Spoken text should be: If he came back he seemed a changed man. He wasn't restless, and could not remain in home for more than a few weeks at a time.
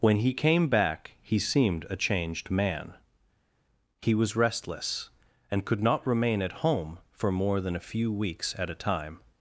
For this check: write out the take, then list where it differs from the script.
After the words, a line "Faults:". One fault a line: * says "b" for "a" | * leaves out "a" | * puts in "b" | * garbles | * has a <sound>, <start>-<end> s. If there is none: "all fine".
When he came back he seemed a changed man. He was restless, and could not remain at home for more than a few weeks at a time.
Faults:
* says "When" for "If"
* says "was" for "wasn't"
* says "at" for "in"